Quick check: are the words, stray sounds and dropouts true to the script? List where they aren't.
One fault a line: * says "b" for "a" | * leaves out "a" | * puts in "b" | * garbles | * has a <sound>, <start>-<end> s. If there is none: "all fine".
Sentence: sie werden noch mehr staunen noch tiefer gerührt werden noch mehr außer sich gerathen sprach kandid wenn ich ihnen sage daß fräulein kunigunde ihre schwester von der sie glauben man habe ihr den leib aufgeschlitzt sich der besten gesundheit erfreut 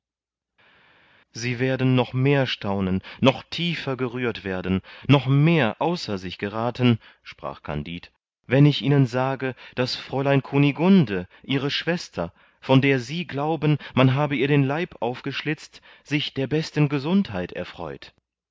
all fine